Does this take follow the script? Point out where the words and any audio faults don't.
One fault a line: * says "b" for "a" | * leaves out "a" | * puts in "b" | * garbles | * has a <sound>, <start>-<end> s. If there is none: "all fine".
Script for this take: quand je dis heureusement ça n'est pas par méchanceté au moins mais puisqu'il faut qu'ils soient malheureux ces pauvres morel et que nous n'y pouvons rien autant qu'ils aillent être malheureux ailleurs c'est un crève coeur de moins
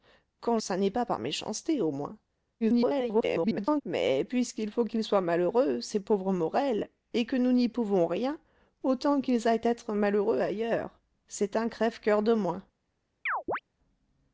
* leaves out "je dis heureusement"
* garbles
* has a chirp, 13.3-13.6 s